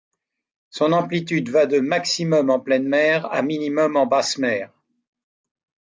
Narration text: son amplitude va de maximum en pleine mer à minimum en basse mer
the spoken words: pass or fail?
pass